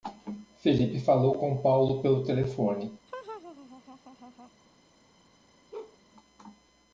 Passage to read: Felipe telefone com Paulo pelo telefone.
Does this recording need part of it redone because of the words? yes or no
yes